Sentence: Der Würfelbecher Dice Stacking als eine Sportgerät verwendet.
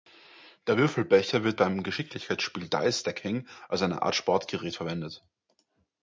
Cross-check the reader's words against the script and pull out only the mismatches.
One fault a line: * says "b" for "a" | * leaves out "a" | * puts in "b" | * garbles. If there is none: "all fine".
* puts in "wird beim Geschicklichkeitsspiel"
* puts in "Art"